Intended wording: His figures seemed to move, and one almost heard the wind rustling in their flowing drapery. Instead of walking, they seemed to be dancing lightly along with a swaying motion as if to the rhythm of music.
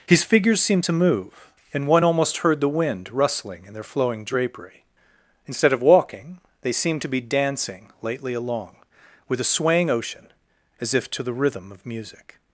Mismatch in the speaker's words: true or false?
true